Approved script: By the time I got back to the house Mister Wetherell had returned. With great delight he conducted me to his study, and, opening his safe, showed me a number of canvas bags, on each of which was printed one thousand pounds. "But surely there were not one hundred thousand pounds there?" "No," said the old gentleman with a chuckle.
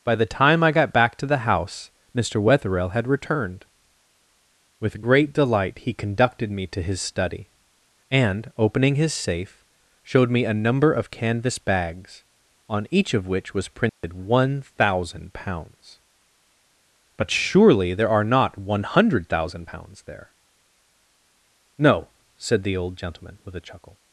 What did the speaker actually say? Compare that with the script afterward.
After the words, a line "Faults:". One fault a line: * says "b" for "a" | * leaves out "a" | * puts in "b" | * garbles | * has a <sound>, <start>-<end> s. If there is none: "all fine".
By the time I got back to the house Mister Wetherell had returned. With great delight he conducted me to his study, and, opening his safe, showed me a number of canvas bags, on each of which was printed one thousand pounds. "But surely there are not one hundred thousand pounds there?" "No," said the old gentleman with a chuckle.
Faults:
* has a dropout, 13.9-14.0 s
* says "are" for "were"